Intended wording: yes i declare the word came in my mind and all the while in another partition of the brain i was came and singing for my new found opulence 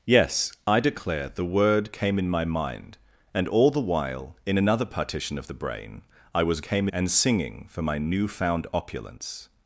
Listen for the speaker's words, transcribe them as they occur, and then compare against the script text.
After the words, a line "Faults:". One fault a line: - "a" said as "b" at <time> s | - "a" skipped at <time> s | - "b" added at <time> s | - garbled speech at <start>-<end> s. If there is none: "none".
yes i declare the word came in my mind and all the while in another partition of the brain i was came and singing for my new found opulence
Faults:
none